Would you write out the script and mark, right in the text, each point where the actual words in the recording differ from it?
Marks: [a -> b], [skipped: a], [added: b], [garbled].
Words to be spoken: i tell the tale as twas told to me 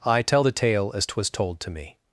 i tell the tale as twas told to me